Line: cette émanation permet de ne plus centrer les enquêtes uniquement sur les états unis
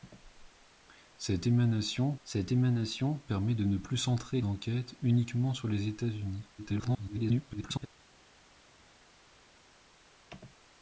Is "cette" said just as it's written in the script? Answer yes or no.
yes